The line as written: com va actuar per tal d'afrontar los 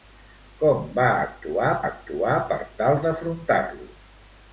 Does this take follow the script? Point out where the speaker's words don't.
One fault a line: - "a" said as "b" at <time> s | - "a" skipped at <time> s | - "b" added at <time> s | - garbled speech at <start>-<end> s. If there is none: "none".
- "actuar" added at 1.9 s